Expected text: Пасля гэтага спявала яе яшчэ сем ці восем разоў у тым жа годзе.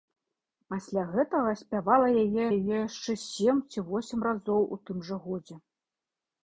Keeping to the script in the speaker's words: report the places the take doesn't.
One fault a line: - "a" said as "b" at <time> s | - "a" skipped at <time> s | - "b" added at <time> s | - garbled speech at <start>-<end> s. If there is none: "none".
- "яе" added at 2.6 s